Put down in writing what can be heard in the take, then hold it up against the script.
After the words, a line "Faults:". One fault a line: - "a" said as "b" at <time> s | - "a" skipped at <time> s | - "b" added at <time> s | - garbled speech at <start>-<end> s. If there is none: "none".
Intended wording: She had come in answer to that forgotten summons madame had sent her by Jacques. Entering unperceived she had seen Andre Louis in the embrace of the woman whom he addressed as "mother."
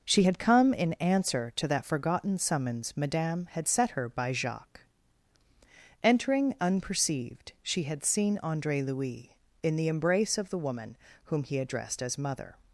She had come in answer to that forgotten summons madame had set her by Jacques. Entering unperceived she had seen Andre Louis in the embrace of the woman whom he addressed as "mother."
Faults:
- "sent" said as "set" at 3.7 s